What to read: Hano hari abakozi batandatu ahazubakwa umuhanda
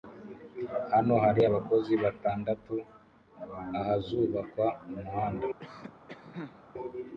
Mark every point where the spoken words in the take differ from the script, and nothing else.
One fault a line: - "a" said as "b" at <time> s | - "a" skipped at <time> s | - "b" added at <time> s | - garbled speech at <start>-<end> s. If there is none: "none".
none